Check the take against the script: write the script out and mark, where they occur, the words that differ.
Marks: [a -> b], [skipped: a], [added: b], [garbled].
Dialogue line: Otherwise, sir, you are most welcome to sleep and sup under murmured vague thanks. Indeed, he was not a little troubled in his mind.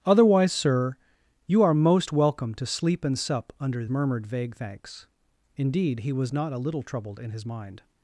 Otherwise, sir, you are most welcome to sleep and sup under murmured vague thanks. Indeed, he was not a little troubled in his mind.